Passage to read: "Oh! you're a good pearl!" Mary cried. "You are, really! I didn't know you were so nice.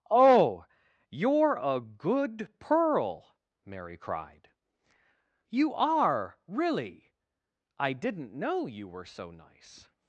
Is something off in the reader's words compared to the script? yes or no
no